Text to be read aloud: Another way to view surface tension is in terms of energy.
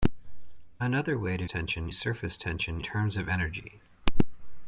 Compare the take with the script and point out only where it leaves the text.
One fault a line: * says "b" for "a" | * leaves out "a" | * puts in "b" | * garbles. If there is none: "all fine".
* says "tension" for "view"
* leaves out "is in"